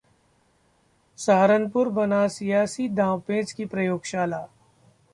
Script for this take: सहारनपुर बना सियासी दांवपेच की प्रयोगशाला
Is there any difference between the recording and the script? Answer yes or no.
no